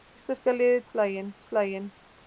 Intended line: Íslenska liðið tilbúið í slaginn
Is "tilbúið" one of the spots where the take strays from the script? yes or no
yes